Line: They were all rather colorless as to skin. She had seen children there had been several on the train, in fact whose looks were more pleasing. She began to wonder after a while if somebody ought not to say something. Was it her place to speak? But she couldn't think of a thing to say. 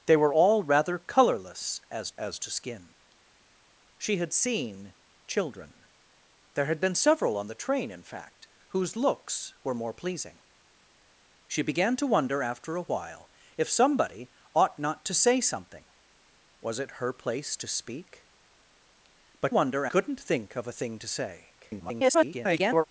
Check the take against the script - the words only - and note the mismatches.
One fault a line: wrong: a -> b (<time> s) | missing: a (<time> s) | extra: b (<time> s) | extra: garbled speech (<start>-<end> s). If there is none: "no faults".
extra: as (2.2 s)
wrong: she -> wonder (19.5 s)
extra: garbled speech (21.6-22.9 s)